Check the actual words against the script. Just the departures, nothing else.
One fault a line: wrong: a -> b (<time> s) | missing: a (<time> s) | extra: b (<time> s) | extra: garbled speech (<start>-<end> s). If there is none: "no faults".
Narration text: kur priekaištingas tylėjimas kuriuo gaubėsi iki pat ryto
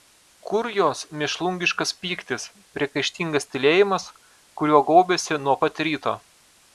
extra: jos mėšlungiškas pyktis (0.7 s)
wrong: iki -> nuo (5.5 s)